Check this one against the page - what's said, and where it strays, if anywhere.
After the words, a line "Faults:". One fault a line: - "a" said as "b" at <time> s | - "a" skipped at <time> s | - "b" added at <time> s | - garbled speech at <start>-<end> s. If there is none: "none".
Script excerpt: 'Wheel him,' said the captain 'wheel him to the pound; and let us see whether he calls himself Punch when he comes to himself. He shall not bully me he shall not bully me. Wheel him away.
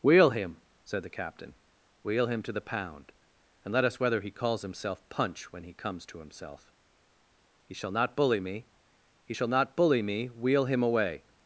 'Wheel him,' said the captain 'wheel him to the pound; and let us whether he calls himself Punch when he comes to himself. He shall not bully me he shall not bully me. Wheel him away.
Faults:
- "see" skipped at 4.0 s